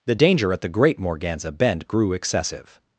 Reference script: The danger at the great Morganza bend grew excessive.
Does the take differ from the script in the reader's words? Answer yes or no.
no